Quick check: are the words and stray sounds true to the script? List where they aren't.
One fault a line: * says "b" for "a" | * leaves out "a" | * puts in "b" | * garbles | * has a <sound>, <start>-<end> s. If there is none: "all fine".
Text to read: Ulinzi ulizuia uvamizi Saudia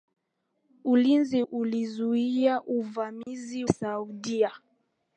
* has a dropout, 3.2-3.3 s